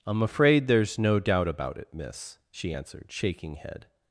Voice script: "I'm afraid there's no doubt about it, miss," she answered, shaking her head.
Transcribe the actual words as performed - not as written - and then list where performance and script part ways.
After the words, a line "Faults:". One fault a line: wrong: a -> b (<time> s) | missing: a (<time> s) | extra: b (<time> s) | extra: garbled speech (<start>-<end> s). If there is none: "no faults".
"I'm afraid there's no doubt about it, miss," she answered, shaking head.
Faults:
missing: her (3.5 s)